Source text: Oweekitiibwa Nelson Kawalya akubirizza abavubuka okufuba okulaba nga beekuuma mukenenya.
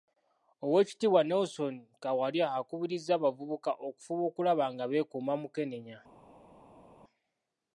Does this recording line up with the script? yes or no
yes